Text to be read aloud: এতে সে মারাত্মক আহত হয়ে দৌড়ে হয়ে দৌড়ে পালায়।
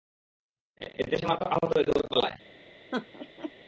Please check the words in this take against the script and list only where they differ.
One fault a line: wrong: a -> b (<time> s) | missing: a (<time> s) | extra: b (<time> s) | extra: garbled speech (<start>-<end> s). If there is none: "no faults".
missing: হয়ে দৌড়ে (2.1 s)